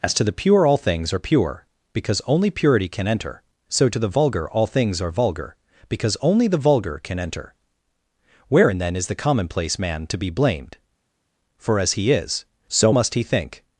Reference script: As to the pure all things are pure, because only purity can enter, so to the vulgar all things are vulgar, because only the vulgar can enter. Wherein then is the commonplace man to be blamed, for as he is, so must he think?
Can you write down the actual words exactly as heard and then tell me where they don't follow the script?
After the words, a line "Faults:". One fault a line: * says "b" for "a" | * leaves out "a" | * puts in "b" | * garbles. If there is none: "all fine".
As to the pure all things are pure, because only purity can enter, so to the vulgar all things are vulgar, because only the vulgar can enter. Wherein then is the commonplace man to be blamed, for as he is, so must he think?
Faults:
all fine